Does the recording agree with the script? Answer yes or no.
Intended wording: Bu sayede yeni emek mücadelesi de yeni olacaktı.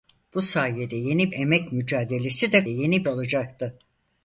yes